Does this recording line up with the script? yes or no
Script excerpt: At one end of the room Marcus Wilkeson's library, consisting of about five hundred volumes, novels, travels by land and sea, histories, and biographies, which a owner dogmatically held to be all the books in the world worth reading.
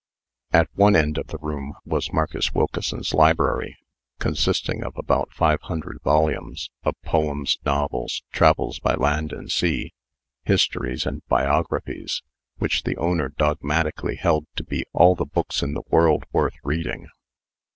no